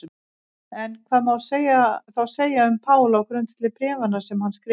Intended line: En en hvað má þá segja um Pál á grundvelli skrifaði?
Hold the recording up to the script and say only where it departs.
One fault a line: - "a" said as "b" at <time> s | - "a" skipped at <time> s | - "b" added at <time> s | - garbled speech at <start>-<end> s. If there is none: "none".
- "en" skipped at 0.9 s
- "bréfanna sem hann" added at 3.8 s